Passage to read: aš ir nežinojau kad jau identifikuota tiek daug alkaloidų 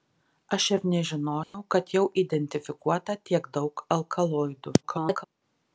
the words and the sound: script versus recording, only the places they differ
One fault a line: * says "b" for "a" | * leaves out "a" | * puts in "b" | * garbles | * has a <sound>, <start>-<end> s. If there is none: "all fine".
* has a dropout, 1.4-1.5 s
* garbles